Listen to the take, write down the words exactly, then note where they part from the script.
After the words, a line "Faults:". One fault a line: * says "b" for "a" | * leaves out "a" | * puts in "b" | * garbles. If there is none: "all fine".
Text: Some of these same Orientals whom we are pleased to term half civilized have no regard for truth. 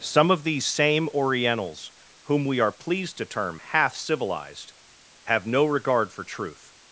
Some of these same Orientals whom we are pleased to term half civilized have no regard for truth.
Faults:
all fine